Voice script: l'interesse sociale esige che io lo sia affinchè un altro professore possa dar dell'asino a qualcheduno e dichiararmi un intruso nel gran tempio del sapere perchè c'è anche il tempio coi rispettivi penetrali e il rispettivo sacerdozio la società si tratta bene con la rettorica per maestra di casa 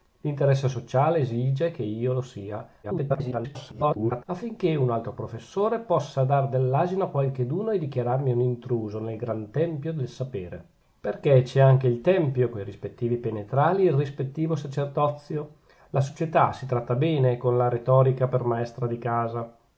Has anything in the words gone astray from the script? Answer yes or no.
yes